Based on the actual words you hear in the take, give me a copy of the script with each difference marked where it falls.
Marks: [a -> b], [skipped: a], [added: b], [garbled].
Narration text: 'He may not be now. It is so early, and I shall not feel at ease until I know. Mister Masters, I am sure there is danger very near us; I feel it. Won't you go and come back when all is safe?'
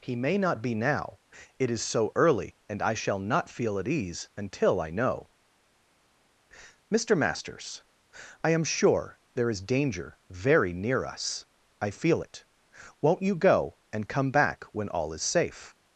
'He may not be now. It is so early, and I shall not feel at ease until I know. Mister Masters, I am sure there is danger very near us; I feel it. Won't you go and come back when all is safe?'